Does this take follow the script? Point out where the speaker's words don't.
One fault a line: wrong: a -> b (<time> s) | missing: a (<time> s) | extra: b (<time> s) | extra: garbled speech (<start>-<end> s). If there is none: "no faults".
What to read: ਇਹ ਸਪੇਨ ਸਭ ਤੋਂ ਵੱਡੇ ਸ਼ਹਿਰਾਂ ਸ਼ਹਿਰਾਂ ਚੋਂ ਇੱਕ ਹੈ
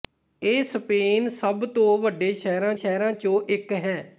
no faults